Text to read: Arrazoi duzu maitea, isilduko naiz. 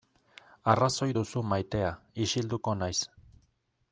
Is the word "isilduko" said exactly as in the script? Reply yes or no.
yes